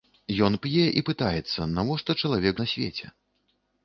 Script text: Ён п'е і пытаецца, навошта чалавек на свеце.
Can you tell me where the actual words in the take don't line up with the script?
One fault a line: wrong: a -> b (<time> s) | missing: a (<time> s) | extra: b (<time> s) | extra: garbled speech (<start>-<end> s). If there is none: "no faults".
no faults